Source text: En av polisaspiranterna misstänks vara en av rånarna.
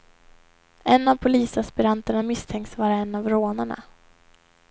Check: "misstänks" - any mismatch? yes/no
no